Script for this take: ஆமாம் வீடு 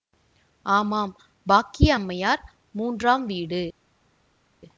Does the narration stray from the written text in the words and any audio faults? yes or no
yes